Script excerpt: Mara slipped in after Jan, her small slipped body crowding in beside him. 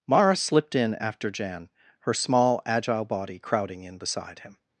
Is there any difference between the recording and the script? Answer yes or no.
yes